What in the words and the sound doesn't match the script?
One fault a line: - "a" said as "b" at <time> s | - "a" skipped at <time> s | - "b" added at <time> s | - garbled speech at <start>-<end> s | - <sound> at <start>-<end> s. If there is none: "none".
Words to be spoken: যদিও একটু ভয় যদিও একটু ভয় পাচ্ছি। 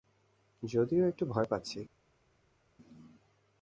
- "যদিও একটু ভয়" skipped at 1.5 s